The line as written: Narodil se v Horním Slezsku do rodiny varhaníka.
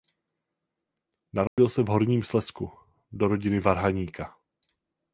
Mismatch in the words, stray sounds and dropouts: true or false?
true